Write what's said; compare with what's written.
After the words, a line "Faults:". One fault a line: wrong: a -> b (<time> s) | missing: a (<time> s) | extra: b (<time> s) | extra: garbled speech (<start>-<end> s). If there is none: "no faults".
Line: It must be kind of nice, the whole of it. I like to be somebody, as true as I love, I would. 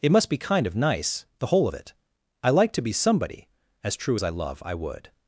It must be kind of nice, the whole of it. I like to be somebody, as true as I love, I would.
Faults:
no faults